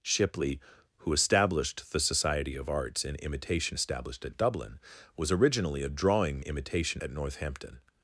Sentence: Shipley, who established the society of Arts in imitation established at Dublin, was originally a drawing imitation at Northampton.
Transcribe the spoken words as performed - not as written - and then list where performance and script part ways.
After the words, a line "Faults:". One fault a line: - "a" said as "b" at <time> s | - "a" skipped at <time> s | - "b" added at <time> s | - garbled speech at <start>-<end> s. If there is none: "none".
Shipley, who established the society of Arts in imitation established at Dublin, was originally a drawing imitation at Northampton.
Faults:
none